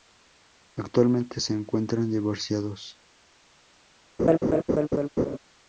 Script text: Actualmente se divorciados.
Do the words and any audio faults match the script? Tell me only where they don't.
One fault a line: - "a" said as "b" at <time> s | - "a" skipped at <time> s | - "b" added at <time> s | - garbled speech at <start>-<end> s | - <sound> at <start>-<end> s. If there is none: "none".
- "encuentran" added at 1.5 s
- laugh at 4.2-5.4 s